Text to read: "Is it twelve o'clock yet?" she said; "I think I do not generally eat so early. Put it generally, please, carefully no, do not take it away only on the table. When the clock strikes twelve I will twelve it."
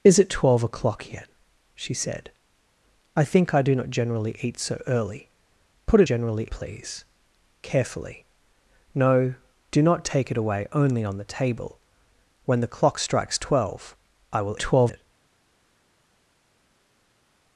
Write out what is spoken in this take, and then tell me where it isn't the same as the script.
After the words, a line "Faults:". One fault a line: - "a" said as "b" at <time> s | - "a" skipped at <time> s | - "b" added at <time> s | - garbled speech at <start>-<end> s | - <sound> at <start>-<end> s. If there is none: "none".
"Is it twelve o'clock yet?" she said; "I think I do not generally eat so early. Put it generally, please, carefully no, do not take it away only on the table. When the clock strikes twelve I will twelve it."
Faults:
none